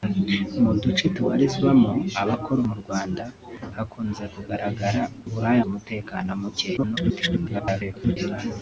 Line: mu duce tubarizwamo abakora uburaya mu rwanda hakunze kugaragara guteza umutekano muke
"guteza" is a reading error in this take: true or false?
true